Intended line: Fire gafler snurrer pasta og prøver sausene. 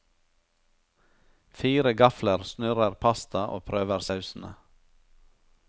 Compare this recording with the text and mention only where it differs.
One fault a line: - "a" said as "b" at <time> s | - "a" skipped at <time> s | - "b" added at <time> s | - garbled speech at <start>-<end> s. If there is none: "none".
none